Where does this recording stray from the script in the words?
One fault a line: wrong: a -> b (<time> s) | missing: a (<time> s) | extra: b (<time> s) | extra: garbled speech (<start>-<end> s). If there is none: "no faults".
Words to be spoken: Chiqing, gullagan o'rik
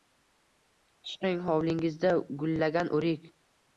extra: hovlingizda (1.5 s)